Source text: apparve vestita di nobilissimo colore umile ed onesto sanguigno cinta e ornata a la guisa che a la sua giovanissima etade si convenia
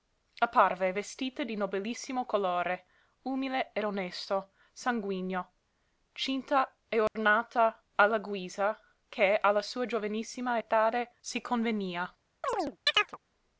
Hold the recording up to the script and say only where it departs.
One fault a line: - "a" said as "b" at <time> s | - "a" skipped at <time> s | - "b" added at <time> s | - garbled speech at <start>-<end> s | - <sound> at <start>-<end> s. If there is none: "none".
- dropout at 7.1-7.2 s
- chirp at 12.4-13.2 s